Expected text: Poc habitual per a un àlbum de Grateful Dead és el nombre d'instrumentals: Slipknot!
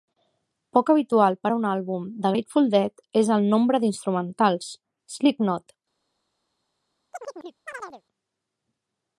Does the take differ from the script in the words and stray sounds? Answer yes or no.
yes